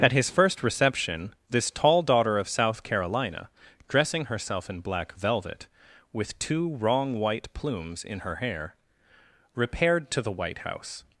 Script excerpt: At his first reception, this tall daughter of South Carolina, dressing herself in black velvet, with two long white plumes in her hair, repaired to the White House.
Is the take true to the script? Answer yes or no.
no